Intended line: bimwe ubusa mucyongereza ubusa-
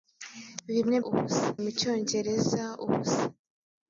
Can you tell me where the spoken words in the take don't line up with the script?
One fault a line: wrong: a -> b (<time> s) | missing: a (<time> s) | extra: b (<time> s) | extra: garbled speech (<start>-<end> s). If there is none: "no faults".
no faults